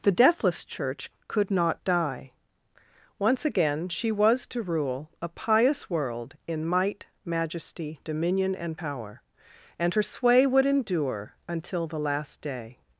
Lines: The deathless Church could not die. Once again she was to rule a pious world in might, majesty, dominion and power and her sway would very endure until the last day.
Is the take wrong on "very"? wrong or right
wrong